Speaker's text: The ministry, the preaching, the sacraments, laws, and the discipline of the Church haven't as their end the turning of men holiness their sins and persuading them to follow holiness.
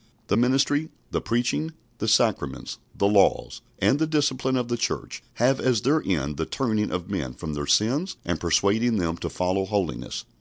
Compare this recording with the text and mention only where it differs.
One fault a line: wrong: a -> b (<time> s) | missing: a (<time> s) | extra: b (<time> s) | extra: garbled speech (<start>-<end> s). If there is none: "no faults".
extra: the (3.0 s)
wrong: haven't -> have (5.3 s)
wrong: holiness -> from (7.3 s)